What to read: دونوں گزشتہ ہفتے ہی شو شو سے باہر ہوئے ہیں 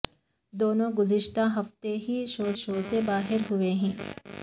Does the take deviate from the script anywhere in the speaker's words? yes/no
no